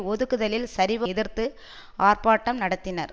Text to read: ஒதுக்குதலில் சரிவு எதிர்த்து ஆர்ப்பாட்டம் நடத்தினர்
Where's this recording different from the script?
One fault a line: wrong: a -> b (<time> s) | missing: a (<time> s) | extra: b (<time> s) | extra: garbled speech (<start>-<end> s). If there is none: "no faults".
no faults